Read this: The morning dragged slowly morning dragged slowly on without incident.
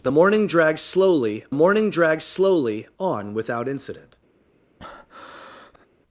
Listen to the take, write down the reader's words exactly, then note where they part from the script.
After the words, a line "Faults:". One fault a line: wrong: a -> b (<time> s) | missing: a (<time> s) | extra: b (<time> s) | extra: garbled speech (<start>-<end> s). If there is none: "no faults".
The morning dragged slowly morning dragged slowly on without incident.
Faults:
no faults